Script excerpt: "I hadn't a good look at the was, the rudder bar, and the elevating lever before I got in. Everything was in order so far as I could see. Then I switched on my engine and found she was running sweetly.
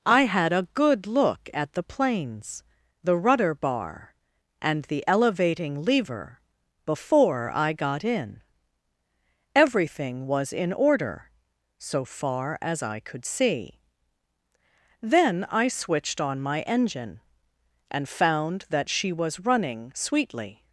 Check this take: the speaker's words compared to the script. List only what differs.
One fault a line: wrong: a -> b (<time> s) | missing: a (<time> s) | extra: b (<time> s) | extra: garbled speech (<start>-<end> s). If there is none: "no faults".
wrong: hadn't -> had (0.2 s)
wrong: was -> planes (1.8 s)
extra: that (18.7 s)